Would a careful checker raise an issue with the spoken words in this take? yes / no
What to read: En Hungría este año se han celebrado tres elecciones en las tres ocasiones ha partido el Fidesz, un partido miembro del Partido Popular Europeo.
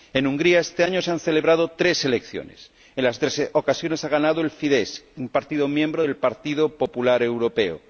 yes